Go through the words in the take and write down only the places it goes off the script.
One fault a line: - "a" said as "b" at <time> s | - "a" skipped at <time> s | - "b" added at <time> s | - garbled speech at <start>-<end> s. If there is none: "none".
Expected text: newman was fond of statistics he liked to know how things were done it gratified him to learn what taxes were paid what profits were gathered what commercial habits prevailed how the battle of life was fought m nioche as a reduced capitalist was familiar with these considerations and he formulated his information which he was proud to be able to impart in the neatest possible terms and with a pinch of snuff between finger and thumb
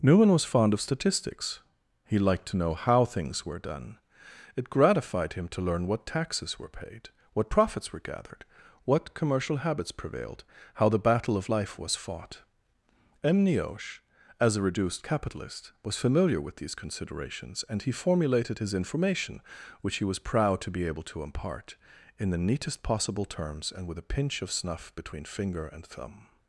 none